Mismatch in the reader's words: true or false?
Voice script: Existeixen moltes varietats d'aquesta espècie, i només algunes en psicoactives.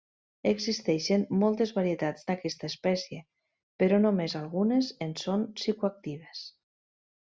true